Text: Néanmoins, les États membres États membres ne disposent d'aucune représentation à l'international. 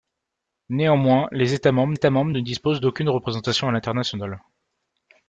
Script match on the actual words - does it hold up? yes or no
yes